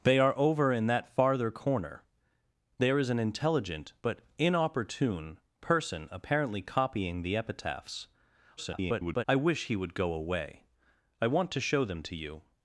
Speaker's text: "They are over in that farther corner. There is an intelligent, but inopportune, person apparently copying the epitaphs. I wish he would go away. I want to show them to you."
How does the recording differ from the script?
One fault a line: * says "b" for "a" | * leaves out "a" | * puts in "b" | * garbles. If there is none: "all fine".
* garbles